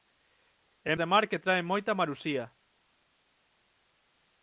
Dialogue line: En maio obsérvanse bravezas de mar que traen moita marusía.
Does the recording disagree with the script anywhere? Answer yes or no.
yes